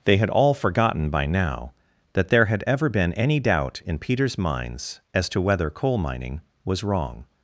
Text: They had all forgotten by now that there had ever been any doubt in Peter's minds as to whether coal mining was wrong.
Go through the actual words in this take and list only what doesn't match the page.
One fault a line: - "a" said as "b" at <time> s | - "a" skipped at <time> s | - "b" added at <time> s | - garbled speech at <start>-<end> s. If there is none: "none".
none